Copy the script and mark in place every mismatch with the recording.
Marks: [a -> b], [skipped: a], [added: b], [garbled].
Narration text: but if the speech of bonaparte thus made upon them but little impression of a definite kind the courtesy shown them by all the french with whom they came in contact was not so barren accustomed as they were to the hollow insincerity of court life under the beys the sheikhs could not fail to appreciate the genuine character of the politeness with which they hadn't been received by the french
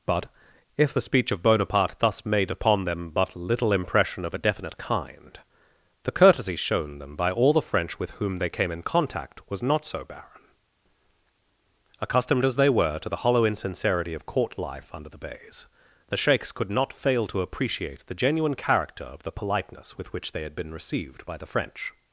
but if the speech of bonaparte thus made upon them but little impression of a definite kind the courtesy shown them by all the french with whom they came in contact was not so barren accustomed as they were to the hollow insincerity of court life under the beys the sheikhs could not fail to appreciate the genuine character of the politeness with which they [hadn't -> had] been received by the french